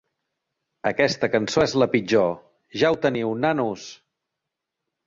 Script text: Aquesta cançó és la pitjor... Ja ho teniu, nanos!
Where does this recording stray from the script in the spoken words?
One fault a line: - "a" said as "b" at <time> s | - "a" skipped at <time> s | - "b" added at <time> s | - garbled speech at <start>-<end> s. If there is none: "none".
none